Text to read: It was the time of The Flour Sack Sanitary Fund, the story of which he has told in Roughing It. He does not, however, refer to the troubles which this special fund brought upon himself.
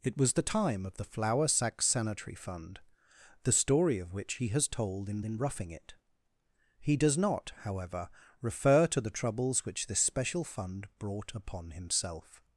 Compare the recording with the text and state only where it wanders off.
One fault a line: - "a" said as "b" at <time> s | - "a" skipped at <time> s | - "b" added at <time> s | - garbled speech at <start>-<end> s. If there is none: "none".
- "in" added at 5.2 s